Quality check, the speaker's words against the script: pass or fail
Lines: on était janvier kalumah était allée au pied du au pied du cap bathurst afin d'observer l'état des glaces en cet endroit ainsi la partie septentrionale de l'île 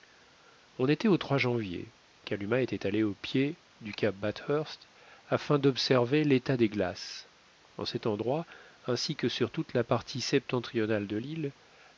fail